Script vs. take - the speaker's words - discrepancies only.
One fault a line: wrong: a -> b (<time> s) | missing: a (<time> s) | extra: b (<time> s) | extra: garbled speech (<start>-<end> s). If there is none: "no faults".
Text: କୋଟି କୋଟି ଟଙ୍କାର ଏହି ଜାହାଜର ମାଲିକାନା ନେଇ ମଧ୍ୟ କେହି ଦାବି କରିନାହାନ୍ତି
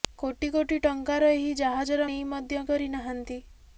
missing: ମାଲିକାନା (2.1 s)
missing: କେହି ଦାବି (2.6 s)